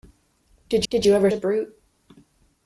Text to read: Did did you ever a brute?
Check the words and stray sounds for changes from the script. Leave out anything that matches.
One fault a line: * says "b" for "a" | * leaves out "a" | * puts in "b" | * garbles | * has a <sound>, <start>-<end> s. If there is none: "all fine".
all fine